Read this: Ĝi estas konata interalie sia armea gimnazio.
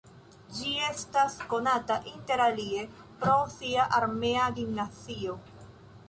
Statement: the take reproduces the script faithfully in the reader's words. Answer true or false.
false